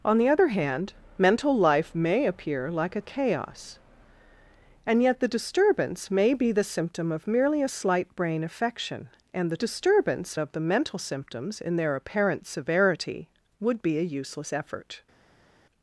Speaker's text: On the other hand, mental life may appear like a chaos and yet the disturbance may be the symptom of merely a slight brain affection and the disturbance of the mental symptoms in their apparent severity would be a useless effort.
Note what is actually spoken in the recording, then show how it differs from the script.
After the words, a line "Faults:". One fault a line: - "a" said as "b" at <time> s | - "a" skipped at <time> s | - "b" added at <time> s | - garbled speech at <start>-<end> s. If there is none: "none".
On the other hand, mental life may appear like a chaos and yet the disturbance may be the symptom of merely a slight brain affection and the disturbance of the mental symptoms in their apparent severity would be a useless effort.
Faults:
none